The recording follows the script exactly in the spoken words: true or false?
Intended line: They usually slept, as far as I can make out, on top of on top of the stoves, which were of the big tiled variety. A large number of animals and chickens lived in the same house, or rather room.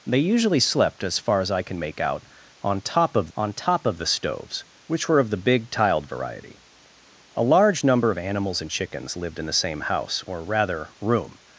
true